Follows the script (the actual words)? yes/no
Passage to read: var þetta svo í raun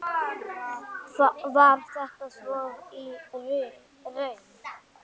yes